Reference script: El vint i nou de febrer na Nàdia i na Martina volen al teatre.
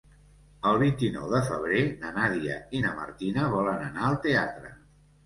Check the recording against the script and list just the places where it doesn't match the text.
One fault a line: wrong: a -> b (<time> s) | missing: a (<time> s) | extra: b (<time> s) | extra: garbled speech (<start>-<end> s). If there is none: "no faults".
extra: anar (3.9 s)